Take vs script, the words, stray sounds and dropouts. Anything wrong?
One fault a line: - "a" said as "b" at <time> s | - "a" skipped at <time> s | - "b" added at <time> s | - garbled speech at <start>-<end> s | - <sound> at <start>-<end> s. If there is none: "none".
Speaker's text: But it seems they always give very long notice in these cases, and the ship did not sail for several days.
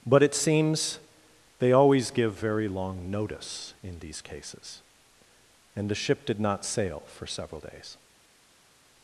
none